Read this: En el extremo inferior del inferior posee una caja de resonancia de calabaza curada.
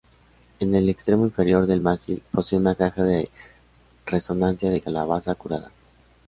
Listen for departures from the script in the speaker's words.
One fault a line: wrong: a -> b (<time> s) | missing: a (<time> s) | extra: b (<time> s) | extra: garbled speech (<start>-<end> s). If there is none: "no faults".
wrong: inferior -> mástil (1.8 s)